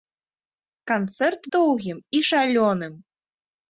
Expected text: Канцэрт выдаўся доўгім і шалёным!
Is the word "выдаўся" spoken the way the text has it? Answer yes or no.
no